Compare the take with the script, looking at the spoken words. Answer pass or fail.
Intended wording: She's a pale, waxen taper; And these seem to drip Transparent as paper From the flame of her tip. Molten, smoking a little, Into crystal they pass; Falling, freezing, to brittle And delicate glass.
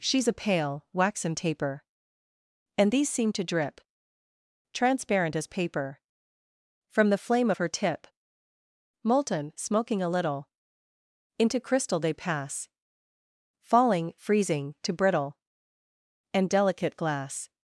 pass